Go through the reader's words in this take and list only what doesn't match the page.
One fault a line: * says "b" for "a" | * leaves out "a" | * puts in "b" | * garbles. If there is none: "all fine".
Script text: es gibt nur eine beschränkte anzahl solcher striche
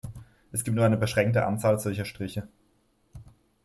all fine